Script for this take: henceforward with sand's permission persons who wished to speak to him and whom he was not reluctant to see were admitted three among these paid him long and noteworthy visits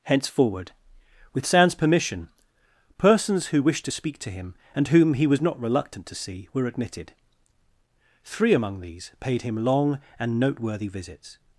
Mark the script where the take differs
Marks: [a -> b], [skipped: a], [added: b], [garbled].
henceforward with sand's permission persons who wished to speak to him and whom he was not reluctant to see were admitted three among these paid him long and noteworthy visits